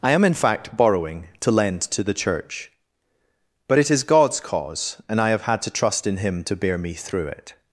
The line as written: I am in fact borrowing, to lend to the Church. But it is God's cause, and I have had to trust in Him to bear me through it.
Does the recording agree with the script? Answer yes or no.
yes